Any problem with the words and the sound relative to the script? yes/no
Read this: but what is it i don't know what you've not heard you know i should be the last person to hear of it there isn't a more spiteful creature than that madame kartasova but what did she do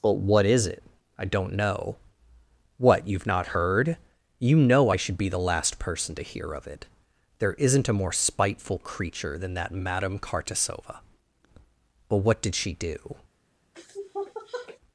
yes